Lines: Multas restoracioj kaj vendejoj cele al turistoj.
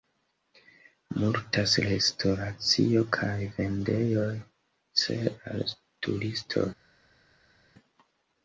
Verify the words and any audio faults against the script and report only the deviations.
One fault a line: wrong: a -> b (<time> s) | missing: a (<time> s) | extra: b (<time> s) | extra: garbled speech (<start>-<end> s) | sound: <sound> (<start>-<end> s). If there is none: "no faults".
no faults